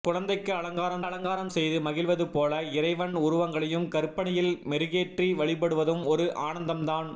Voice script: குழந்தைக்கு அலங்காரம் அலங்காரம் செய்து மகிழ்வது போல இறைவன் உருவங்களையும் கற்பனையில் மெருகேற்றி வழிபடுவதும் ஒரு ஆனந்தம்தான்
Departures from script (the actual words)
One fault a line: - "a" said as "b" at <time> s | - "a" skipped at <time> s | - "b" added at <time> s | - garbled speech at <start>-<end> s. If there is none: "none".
none